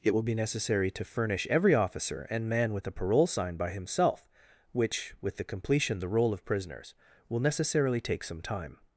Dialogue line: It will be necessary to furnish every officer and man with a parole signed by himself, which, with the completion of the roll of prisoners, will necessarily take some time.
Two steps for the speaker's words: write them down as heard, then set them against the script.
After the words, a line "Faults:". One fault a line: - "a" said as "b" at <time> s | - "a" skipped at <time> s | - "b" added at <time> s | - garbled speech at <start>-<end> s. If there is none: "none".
It will be necessary to furnish every officer and man with a parole sign by himself, which, with the completion the roll of prisoners, will necessarily take some time.
Faults:
- "signed" said as "sign" at 3.3 s
- "of" skipped at 6.0 s